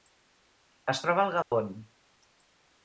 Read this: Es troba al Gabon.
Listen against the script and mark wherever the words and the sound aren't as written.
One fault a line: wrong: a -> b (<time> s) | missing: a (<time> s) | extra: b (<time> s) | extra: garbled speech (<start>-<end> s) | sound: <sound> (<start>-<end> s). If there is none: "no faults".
sound: dropout (1.4-1.5 s)